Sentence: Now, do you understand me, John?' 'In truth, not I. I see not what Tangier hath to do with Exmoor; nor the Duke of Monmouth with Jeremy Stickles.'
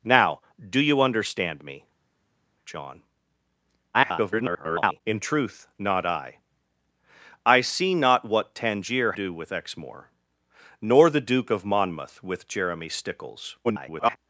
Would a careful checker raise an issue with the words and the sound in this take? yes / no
yes